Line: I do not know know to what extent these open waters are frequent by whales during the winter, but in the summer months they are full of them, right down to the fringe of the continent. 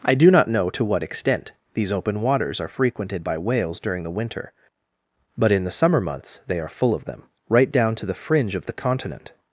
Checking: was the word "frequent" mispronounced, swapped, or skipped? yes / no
yes